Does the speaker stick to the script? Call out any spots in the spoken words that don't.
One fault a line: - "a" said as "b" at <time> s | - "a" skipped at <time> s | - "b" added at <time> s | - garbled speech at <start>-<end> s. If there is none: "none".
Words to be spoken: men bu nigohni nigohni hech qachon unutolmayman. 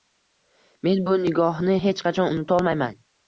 - "nigohni" skipped at 1.8 s